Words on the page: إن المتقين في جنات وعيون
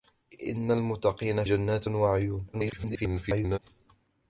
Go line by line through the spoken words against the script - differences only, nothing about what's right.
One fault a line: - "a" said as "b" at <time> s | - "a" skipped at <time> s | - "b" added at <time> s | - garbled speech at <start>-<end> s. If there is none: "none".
- "في" skipped at 1.4 s
- garbled speech at 2.5-3.6 s